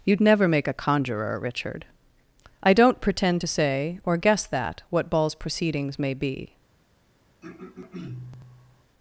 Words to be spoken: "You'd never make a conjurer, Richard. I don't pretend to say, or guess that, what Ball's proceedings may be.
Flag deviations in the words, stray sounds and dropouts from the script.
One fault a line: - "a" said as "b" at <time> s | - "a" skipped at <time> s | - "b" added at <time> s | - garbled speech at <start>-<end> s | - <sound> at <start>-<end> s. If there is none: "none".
- throat clearing at 7.4-8.8 s